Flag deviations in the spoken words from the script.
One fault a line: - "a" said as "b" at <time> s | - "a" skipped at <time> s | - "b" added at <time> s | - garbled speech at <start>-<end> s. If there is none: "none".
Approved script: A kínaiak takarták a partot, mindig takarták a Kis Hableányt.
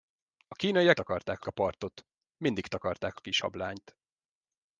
none